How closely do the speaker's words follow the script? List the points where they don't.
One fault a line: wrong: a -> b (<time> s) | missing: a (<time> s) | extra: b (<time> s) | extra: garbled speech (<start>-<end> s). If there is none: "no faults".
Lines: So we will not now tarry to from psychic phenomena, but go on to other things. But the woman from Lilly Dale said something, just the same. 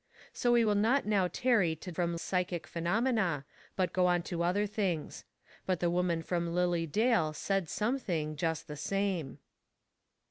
no faults